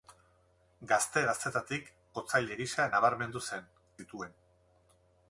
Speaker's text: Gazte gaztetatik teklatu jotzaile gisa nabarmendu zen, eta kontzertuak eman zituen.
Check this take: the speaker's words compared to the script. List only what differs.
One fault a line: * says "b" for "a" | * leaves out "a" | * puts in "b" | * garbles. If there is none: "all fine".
* leaves out "teklatu"
* leaves out "eta kontzertuak eman"